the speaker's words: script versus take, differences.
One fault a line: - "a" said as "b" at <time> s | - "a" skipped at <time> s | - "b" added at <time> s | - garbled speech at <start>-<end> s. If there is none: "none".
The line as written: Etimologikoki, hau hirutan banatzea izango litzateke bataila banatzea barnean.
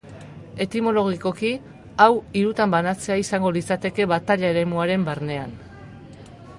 - "banatzea" said as "eremuaren" at 4.5 s